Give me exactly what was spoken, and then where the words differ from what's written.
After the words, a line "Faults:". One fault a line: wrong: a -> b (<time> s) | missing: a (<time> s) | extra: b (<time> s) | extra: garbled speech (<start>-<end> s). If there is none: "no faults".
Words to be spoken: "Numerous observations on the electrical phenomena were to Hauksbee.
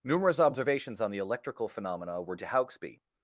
"Numerous observations on the electrical phenomena were to Hauksbee.
Faults:
no faults